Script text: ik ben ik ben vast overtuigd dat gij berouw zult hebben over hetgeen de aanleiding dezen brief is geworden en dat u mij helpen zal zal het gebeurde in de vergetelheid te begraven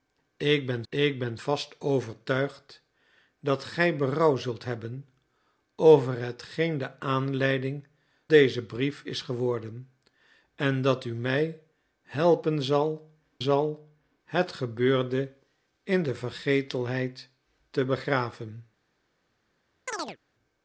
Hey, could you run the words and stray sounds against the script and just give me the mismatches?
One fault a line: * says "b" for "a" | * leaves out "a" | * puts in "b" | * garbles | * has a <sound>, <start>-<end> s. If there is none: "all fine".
* has a chirp, 19.9-20.2 s